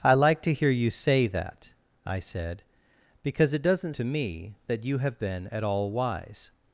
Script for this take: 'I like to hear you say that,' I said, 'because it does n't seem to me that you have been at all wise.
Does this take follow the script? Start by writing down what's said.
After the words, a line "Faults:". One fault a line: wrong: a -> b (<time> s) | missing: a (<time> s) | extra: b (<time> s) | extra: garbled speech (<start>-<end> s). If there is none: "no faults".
'I like to hear you say that,' I said, 'because it does n't to me that you have been at all wise.
Faults:
missing: seem (4.0 s)